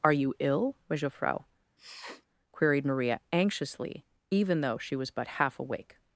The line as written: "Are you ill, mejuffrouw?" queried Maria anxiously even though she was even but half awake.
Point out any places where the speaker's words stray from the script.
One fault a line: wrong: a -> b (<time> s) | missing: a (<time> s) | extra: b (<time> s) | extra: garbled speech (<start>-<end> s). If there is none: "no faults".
missing: even (5.1 s)